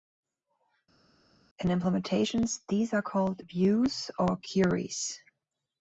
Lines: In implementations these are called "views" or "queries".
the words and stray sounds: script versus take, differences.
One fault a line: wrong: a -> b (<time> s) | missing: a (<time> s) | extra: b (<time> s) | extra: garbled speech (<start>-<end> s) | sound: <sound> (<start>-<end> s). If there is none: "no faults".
no faults